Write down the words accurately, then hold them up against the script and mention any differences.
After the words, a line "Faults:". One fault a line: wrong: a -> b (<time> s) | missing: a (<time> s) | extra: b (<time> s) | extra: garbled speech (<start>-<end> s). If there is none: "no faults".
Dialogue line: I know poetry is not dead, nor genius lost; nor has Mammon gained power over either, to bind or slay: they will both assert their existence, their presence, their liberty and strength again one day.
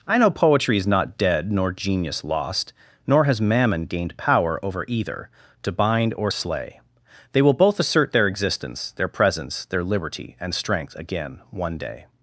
I know poetry is not dead, nor genius lost; nor has Mammon gained power over either, to bind or slay: they will both assert their existence, their presence, their liberty and strength again one day.
Faults:
no faults